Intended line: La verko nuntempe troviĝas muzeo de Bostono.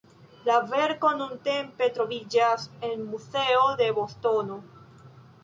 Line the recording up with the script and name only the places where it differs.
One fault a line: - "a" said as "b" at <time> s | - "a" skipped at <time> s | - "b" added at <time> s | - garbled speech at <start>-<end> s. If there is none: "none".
- "en" added at 2.9 s